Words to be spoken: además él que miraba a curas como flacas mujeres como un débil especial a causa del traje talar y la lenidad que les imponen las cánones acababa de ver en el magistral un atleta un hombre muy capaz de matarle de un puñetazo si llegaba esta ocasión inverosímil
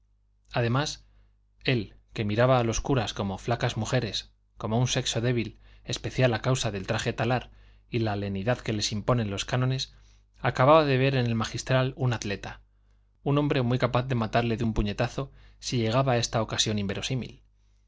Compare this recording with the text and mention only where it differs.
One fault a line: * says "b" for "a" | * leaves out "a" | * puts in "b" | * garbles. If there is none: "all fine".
* puts in "los"
* puts in "sexo"
* says "los" for "las"